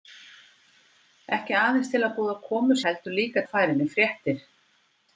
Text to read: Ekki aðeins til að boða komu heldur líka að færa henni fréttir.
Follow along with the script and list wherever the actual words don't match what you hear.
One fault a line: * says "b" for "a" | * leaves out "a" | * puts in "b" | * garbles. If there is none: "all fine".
all fine